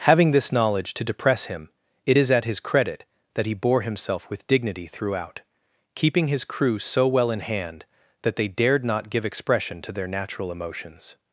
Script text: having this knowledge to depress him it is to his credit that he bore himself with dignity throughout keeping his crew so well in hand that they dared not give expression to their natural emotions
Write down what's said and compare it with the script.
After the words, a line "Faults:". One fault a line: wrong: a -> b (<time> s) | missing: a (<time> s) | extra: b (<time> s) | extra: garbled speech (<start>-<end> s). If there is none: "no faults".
having this knowledge to depress him it is at his credit that he bore himself with dignity throughout keeping his crew so well in hand that they dared not give expression to their natural emotions
Faults:
wrong: to -> at (2.3 s)